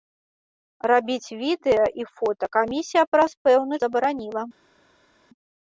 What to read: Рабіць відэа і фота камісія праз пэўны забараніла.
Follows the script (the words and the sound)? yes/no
yes